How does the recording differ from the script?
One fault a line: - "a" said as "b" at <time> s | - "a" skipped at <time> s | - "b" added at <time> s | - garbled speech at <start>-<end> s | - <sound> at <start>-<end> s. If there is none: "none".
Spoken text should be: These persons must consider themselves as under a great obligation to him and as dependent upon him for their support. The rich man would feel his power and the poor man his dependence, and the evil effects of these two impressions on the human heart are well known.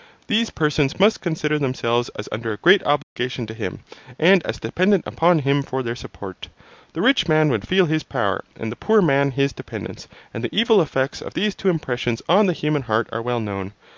- dropout at 3.0-3.2 s